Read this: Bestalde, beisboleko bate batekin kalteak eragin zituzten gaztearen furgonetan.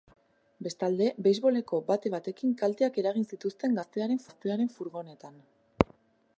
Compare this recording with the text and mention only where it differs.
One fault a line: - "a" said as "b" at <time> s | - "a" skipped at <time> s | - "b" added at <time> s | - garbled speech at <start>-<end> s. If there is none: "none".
- "gaztearen" added at 4.3 s